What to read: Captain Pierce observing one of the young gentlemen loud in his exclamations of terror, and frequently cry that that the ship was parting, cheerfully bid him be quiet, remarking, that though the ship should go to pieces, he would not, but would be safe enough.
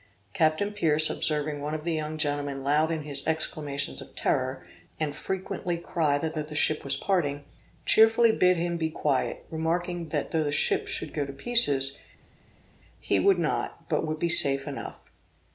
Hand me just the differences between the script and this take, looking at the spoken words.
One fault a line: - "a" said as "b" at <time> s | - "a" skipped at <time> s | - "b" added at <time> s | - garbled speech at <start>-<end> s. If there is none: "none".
none